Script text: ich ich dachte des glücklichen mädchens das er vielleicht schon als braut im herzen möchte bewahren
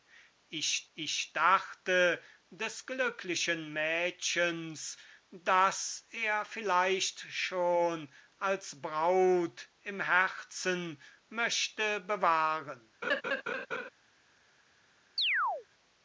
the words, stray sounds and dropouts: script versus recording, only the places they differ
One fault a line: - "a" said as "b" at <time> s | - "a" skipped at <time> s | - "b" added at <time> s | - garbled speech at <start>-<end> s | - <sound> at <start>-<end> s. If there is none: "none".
- laugh at 13.0-13.9 s
- chirp at 15.2-15.7 s